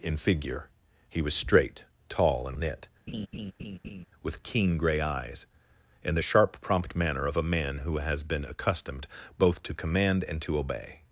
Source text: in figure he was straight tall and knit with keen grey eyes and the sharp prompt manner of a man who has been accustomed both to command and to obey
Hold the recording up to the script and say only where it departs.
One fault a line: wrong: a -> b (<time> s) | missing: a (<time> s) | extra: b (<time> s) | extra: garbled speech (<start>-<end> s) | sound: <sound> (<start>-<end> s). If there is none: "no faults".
sound: laugh (3.1-4.1 s)